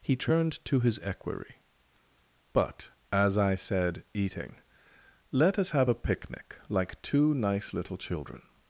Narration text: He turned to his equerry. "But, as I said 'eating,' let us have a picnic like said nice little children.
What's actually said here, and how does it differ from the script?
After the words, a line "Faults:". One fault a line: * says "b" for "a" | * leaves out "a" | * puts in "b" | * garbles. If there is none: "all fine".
He turned to his equerry. "But, as I said 'eating,' let us have a picnic like two nice little children.
Faults:
* says "two" for "said"